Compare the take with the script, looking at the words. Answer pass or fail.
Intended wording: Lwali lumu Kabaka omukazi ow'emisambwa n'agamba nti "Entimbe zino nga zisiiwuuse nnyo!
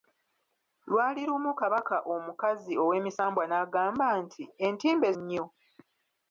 fail